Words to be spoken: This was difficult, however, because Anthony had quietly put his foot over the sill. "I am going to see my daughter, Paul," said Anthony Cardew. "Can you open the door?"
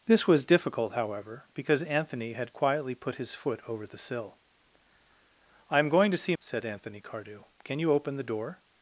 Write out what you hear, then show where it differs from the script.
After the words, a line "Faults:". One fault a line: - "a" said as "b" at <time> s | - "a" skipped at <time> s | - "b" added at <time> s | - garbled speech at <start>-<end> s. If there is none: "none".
This was difficult, however, because Anthony had quietly put his foot over the sill. "I am going to see," said Anthony Cardew. "Can you open the door?"
Faults:
- "my daughter Paul" skipped at 6.3 s